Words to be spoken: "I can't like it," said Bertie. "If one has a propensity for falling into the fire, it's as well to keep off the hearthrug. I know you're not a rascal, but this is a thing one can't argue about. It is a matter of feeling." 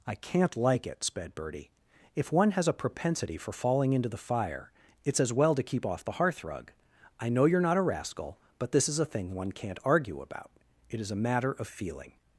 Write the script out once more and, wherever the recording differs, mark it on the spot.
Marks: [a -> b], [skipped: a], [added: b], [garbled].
"I can't like it," [said -> sped] Bertie. "If one has a propensity for falling into the fire, it's as well to keep off the hearthrug. I know you're not a rascal, but this is a thing one can't argue about. It is a matter of feeling."